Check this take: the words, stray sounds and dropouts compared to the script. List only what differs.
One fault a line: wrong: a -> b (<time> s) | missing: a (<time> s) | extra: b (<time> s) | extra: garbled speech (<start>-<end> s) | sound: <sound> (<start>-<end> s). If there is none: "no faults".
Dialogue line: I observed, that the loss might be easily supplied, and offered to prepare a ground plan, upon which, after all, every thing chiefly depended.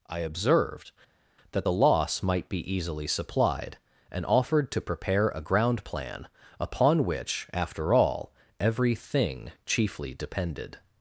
no faults